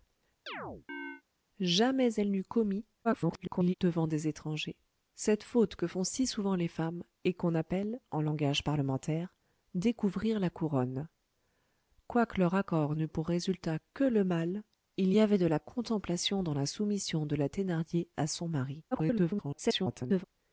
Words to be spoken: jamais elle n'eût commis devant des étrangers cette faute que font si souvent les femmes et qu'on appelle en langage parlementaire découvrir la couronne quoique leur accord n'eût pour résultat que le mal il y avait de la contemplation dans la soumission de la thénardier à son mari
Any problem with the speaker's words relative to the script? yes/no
yes